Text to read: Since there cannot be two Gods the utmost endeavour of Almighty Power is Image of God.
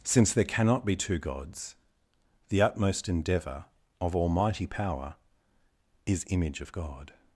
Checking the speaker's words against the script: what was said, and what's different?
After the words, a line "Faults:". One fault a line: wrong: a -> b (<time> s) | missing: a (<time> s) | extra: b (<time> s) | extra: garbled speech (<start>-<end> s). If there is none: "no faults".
Since there cannot be two Gods the utmost endeavour of Almighty Power is Image of God.
Faults:
no faults